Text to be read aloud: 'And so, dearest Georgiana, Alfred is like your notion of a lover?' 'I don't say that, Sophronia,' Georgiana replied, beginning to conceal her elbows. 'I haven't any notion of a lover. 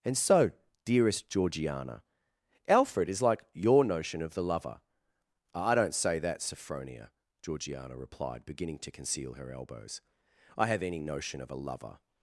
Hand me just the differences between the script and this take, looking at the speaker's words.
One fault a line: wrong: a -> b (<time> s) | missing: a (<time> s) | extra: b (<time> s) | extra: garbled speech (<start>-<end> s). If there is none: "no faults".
wrong: a -> the (4.3 s)
wrong: haven't -> have (10.7 s)